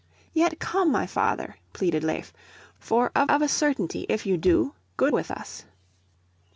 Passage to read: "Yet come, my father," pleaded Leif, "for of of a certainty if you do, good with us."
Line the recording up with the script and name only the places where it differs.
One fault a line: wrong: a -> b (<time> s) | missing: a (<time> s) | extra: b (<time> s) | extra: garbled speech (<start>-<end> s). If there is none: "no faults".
no faults